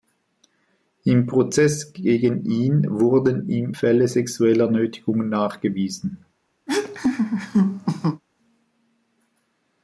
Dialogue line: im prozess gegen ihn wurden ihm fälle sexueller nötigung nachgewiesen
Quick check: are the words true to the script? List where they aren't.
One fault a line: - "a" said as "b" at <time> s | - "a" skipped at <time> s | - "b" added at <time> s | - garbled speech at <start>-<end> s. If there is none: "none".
none